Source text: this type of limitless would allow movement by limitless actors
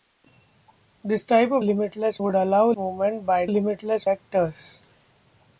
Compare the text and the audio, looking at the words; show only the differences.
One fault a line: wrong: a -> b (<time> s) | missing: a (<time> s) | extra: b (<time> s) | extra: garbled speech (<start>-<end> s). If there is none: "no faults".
no faults